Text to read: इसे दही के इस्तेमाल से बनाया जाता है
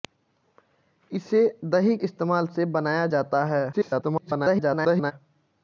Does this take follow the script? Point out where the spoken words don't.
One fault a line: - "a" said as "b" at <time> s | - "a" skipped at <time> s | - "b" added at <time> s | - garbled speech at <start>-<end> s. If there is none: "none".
- "के" skipped at 2.0 s
- garbled speech at 3.7-5.1 s